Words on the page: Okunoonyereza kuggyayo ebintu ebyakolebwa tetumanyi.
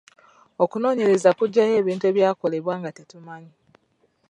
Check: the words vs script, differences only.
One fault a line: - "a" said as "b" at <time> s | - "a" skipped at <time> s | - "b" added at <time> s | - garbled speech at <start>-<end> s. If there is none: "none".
- "nga" added at 2.8 s